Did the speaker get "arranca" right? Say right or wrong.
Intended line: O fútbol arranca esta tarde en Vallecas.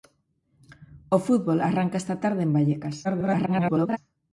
right